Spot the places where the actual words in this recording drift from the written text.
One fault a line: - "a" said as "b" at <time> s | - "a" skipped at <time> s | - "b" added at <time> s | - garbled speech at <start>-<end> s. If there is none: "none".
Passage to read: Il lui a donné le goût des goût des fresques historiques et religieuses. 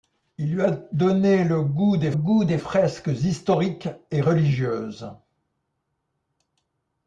none